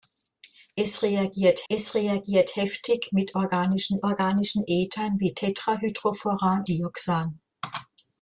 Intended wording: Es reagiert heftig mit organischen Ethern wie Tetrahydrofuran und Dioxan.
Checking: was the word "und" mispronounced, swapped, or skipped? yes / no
yes